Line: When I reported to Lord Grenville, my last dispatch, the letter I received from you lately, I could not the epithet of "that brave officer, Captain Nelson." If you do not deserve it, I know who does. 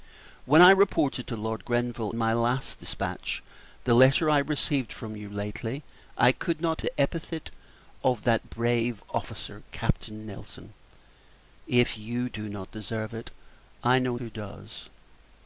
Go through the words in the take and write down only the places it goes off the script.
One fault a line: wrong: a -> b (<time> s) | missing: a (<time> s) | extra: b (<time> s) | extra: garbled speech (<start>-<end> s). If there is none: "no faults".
no faults